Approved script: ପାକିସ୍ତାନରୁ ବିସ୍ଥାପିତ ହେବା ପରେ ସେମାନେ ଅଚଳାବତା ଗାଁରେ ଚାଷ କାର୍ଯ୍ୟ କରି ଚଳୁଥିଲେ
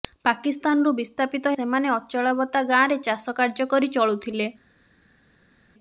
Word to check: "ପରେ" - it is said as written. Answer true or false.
false